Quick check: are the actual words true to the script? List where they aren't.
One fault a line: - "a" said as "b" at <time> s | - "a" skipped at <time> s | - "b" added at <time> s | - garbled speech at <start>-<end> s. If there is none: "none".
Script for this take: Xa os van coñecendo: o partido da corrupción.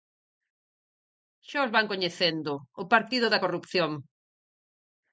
none